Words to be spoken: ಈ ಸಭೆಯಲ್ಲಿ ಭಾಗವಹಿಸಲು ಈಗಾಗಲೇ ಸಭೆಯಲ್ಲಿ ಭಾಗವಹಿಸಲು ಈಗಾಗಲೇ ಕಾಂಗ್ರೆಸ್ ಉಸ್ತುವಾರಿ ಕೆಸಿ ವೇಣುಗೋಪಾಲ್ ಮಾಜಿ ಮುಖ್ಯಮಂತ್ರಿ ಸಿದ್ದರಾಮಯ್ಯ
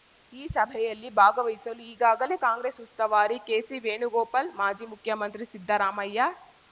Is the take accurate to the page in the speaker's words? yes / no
no